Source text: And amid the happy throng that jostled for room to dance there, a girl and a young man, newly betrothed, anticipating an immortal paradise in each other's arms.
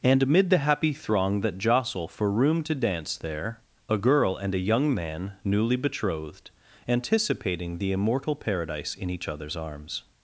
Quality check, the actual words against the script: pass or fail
fail